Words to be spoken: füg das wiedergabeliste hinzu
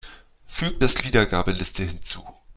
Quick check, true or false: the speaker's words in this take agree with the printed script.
true